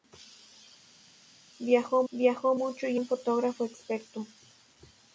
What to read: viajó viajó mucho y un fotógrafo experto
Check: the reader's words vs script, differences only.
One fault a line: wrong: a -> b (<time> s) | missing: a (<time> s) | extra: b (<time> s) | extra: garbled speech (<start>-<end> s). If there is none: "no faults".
no faults